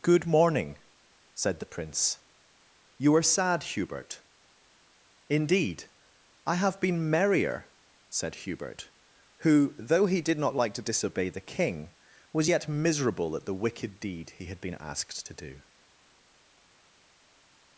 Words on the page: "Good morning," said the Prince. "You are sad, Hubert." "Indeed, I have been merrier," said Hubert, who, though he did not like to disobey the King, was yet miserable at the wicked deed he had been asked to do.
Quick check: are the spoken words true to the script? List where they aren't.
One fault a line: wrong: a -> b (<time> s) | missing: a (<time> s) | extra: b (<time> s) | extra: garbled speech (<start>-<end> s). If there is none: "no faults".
no faults